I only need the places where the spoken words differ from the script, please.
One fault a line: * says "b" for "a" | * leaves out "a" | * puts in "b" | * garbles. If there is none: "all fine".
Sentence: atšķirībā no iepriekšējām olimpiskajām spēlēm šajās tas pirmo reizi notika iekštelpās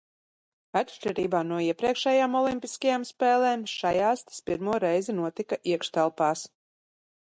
all fine